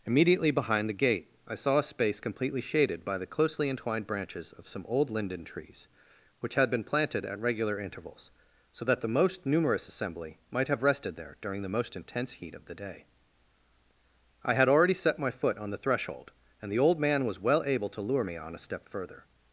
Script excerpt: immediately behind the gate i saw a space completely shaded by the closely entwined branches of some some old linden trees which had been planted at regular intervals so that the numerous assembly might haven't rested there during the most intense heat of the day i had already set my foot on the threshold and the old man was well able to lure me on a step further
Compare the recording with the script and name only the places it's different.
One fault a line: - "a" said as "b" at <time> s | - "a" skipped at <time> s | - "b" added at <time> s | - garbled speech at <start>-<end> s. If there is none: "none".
- "some" skipped at 4.8 s
- "most" added at 9.1 s
- "haven't" said as "have" at 10.7 s